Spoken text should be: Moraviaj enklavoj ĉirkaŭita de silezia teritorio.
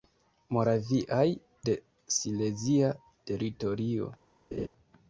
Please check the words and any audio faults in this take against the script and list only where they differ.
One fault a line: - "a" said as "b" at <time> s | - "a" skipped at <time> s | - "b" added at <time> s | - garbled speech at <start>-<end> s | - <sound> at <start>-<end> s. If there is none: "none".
- "enklavoj ĉirkaŭita" skipped at 1.2 s
- laugh at 4.5-4.7 s